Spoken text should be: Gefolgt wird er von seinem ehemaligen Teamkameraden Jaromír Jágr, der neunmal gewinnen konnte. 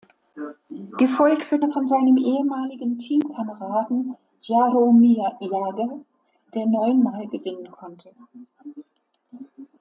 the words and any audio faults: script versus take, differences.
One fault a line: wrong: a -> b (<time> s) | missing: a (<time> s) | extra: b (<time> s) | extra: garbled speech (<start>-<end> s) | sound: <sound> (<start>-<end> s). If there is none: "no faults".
no faults